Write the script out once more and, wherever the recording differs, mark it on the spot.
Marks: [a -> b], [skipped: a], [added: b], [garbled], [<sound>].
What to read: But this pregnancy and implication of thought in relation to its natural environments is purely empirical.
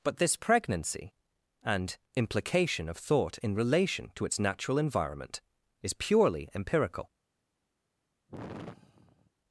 But this pregnancy and implication of thought in relation to its natural [environments -> environment] is purely empirical. [sigh]